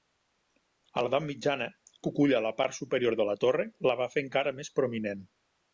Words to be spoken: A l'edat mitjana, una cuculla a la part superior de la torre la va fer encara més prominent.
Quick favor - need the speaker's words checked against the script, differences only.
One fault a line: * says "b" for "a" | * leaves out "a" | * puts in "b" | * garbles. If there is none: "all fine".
* leaves out "una"